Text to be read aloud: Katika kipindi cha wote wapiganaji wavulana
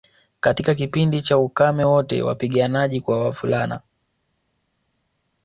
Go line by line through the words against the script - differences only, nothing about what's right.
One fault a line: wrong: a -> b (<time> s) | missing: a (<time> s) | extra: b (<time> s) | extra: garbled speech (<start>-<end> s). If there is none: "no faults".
extra: ukame (1.4 s)
extra: kwa (3.0 s)